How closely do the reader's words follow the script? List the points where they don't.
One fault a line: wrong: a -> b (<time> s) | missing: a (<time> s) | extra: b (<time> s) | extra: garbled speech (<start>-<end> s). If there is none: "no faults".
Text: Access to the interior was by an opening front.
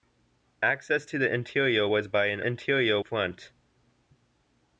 wrong: opening -> interior (2.4 s)